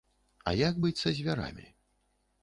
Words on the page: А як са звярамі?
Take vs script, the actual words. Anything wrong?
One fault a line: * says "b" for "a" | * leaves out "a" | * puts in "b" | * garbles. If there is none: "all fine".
* puts in "быць"